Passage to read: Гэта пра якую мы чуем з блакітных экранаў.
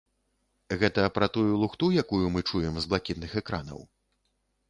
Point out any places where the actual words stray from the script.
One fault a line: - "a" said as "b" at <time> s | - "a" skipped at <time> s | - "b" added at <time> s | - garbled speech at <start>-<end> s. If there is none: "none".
- "тую лухту" added at 1.4 s